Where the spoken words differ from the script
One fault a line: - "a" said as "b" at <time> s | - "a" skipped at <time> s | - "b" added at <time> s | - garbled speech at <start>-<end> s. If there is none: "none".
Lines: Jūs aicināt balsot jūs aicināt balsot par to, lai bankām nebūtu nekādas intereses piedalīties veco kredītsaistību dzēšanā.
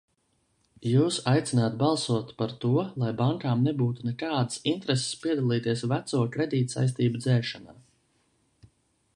- "jūs aicināt balsot" skipped at 2.3 s